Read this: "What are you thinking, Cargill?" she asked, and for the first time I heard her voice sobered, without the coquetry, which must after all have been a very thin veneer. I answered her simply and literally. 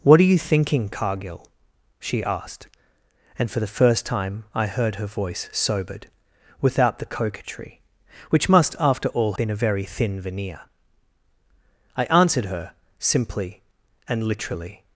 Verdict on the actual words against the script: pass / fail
fail